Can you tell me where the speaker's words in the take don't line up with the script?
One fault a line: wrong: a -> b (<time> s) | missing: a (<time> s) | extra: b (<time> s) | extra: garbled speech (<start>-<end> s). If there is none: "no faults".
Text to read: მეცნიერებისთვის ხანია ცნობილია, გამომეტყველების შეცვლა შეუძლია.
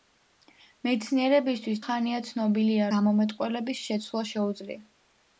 no faults